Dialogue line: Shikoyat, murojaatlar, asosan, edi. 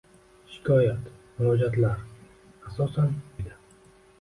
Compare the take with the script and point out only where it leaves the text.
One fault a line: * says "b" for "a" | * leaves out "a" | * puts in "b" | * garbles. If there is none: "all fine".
all fine